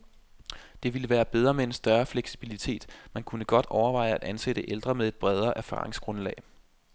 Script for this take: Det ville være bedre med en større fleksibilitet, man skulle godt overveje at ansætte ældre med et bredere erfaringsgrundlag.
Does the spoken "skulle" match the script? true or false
false